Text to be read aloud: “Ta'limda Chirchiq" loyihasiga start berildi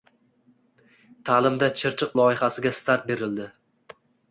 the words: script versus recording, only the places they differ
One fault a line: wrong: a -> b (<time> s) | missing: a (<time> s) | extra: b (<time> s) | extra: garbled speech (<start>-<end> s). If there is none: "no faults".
no faults